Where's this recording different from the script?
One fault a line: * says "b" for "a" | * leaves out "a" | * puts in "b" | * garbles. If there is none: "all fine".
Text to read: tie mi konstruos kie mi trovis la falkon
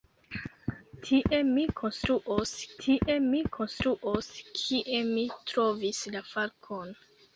* puts in "tie mi konstruos"